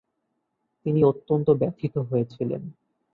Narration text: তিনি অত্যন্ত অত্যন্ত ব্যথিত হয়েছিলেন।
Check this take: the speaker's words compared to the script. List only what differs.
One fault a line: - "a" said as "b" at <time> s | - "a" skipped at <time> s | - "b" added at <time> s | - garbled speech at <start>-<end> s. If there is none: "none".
- "অত্যন্ত" skipped at 1.5 s